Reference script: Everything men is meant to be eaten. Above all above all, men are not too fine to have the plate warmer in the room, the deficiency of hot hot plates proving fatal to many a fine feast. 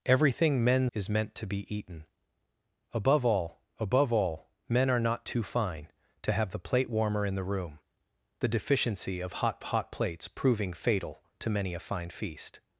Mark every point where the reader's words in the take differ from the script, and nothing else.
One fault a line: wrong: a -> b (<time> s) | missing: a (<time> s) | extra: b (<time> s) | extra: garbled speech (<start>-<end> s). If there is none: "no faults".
no faults